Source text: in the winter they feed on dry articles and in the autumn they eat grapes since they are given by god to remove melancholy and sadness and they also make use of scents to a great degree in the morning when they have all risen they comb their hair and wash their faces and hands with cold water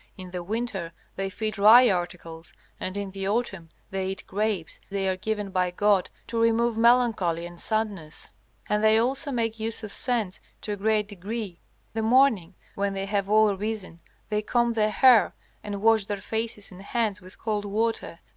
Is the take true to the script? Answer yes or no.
no